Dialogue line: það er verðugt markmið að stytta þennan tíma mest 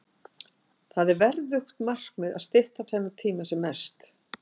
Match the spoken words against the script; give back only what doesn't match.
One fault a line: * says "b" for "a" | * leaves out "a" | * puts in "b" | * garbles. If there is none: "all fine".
* puts in "sem"